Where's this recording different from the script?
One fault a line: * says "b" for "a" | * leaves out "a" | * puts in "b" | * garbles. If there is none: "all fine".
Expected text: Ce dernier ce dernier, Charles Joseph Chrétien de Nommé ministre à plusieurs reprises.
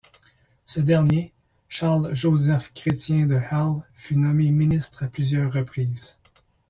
* leaves out "ce dernier"
* puts in "Hell fut"